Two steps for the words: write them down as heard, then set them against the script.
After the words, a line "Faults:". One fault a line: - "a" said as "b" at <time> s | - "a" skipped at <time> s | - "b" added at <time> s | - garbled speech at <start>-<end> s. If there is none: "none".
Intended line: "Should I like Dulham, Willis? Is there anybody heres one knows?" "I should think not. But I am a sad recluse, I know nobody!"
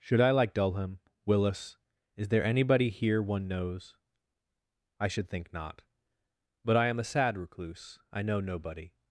"Should I like Dulham, Willis? Is there anybody here one knows?" "I should think not. But I am a sad recluse, I know nobody!"
Faults:
- "heres" said as "here" at 2.9 s